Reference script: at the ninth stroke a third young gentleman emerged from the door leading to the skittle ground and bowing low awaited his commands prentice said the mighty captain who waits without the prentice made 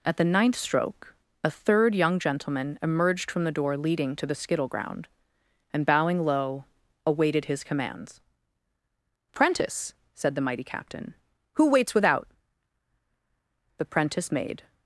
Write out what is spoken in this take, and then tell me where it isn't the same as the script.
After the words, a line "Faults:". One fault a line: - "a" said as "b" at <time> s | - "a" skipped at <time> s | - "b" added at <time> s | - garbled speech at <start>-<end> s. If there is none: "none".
at the ninth stroke a third young gentleman emerged from the door leading to the skittle ground and bowing low awaited his commands prentice said the mighty captain who waits without the prentice made
Faults:
none